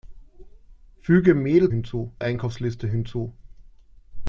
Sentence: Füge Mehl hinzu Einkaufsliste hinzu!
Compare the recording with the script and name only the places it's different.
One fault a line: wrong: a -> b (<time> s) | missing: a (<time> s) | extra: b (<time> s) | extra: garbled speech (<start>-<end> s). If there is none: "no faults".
no faults